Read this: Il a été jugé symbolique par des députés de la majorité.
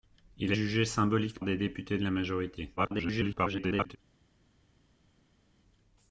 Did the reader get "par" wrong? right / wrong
wrong